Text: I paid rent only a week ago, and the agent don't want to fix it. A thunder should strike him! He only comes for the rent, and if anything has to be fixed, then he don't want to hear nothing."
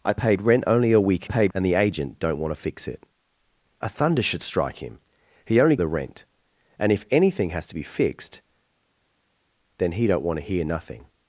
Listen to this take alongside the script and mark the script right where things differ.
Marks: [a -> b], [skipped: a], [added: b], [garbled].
I paid rent only a week [ago, -> paid] and the agent don't want to fix it. A thunder should strike him! He only [skipped: comes for] the rent, and if anything has to be fixed, then he don't want to hear nothing."